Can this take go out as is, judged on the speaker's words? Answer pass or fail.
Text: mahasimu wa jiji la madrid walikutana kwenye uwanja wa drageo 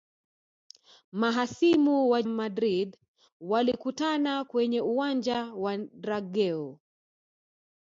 fail